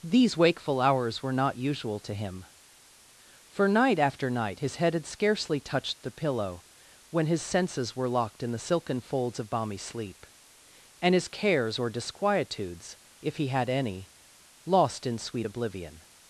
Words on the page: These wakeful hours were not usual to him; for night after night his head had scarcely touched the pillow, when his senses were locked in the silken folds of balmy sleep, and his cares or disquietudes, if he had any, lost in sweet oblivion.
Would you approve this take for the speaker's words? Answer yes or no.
yes